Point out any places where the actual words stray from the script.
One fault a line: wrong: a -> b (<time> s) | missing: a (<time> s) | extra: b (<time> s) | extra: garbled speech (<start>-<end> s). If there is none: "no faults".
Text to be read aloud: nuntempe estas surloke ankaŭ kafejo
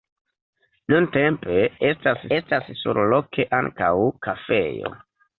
extra: estas (2.4 s)